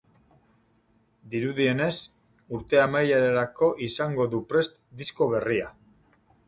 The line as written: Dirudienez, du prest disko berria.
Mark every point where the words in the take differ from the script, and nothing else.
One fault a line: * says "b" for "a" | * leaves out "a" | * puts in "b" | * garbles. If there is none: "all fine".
* puts in "urte amaierarako izango"